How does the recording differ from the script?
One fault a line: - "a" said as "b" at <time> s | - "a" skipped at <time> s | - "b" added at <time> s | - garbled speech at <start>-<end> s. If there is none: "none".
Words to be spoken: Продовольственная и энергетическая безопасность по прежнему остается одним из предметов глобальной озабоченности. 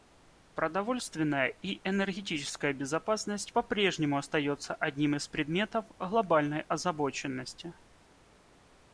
none